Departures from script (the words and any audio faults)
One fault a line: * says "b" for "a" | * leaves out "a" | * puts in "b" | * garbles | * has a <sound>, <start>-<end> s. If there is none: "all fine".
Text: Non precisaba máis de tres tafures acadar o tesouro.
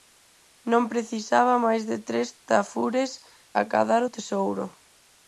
all fine